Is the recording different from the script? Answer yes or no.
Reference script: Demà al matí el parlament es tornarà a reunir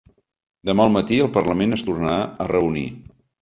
no